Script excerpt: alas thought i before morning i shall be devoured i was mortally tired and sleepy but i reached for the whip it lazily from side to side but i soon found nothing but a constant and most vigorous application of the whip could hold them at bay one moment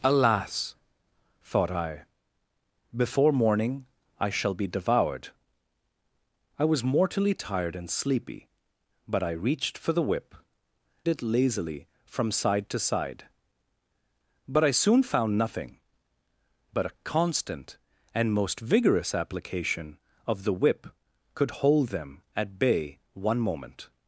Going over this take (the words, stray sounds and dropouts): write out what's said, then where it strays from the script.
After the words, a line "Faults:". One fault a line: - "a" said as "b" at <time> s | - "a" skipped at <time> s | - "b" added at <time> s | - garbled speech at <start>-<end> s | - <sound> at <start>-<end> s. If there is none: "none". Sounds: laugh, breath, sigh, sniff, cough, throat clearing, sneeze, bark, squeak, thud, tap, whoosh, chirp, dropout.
alas thought i before morning i shall be devoured i was mortally tired and sleepy but i reached for the whip it lazily from side to side but i soon found nothing but a constant and most vigorous application of the whip could hold them at bay one moment
Faults:
none